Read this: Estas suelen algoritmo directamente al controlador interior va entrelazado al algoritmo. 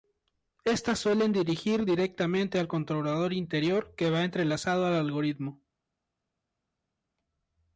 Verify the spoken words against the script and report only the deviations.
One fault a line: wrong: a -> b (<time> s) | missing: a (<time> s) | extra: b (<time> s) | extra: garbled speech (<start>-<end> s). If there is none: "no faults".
wrong: algoritmo -> dirigir (1.3 s)
extra: que (4.0 s)